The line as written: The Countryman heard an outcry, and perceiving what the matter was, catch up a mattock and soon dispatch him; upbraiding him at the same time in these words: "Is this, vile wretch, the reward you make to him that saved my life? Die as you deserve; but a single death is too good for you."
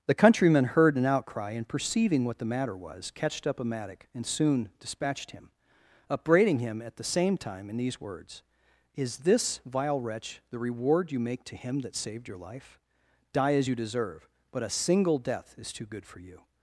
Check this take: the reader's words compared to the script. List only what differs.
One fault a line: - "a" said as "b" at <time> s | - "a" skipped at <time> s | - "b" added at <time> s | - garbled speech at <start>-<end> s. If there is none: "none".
- "catch" said as "catched" at 3.1 s
- "dispatch" said as "dispatched" at 4.8 s
- "my" said as "your" at 12.3 s